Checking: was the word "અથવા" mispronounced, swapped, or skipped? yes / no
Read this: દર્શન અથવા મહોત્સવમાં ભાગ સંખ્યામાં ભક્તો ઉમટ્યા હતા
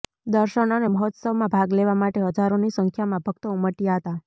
yes